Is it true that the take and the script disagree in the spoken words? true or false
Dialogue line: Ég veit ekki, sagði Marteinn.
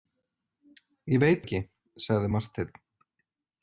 false